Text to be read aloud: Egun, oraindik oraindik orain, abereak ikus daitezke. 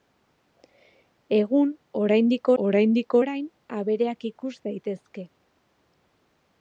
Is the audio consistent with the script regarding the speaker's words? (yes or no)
yes